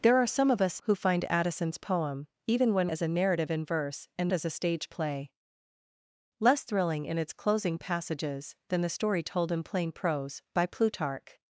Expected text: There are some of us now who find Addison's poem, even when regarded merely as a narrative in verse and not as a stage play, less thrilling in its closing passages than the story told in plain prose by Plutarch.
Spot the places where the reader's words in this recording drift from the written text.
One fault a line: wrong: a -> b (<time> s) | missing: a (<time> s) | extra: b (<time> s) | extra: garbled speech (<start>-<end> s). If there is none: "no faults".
missing: now (0.8 s)
missing: regarded merely (2.9 s)
missing: not (4.3 s)